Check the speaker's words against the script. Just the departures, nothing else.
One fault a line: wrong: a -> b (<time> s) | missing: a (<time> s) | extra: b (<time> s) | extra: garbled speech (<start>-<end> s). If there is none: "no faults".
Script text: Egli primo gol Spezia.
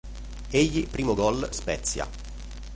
no faults